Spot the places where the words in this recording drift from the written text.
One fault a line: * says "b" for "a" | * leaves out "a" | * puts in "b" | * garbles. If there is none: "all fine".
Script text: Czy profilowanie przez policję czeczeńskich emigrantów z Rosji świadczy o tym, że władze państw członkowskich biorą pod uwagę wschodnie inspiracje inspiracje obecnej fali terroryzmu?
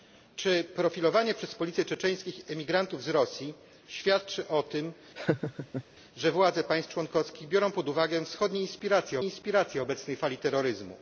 all fine